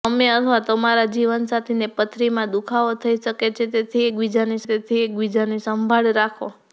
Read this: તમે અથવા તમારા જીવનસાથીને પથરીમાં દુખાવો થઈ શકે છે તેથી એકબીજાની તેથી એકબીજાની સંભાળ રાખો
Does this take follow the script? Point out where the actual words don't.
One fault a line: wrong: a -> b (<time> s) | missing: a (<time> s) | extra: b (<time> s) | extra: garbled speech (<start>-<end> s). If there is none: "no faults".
no faults